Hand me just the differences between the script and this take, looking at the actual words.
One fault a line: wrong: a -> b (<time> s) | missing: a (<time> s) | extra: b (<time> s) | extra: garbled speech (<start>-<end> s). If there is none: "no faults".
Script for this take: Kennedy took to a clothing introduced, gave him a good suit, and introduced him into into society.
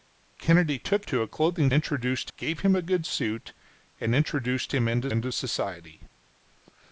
no faults